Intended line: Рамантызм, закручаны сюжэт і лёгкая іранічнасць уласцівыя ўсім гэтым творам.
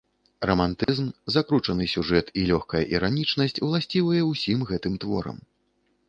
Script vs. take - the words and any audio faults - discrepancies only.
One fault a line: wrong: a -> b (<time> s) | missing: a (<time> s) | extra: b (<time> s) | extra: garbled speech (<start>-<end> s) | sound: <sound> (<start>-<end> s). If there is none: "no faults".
sound: dropout (0.8-0.9 s)